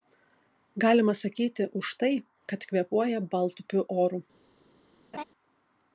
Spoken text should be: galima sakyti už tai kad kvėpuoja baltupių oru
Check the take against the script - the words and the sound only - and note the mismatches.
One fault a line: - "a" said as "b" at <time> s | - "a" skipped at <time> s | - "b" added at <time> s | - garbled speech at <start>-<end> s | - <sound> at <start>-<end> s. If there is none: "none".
- laugh at 5.1-5.2 s